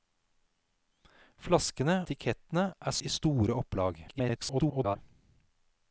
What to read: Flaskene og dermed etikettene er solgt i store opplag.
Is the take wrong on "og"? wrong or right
wrong